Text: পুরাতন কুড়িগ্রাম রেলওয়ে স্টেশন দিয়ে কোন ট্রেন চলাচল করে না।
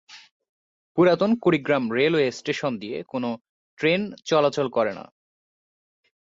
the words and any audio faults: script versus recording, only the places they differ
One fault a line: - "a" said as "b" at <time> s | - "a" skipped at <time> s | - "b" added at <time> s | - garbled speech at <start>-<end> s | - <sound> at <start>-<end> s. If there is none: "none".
none